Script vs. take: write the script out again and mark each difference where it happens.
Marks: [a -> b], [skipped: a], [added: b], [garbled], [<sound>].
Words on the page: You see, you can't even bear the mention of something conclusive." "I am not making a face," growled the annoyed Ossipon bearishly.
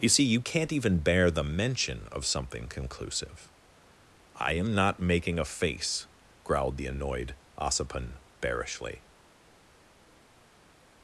You see, you can't even bear the mention of something conclusive." "I am not making a face," growled the annoyed Ossipon bearishly.